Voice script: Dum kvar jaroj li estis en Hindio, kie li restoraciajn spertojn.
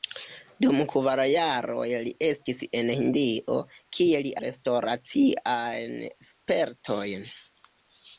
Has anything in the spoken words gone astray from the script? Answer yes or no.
no